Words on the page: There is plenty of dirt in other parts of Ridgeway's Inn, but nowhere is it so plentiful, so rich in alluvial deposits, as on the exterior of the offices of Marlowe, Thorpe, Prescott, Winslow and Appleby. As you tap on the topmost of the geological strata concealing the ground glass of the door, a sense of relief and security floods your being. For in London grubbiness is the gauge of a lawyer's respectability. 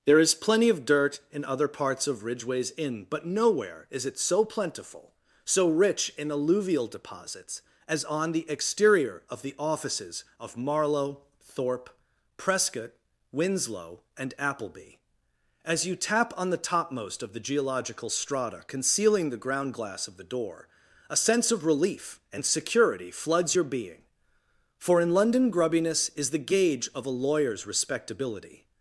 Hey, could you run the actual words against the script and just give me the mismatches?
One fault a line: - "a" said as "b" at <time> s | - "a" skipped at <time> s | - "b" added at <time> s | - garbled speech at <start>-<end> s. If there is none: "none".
none